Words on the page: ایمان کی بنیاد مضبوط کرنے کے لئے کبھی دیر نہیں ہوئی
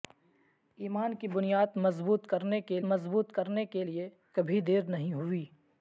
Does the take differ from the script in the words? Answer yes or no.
yes